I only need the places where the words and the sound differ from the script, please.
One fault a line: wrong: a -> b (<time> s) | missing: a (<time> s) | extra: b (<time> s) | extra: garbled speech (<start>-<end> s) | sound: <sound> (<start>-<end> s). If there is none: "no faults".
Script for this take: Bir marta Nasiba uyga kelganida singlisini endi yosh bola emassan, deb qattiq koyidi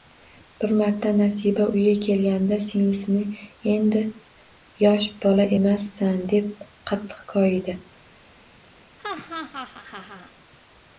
sound: laugh (9.0-10.3 s)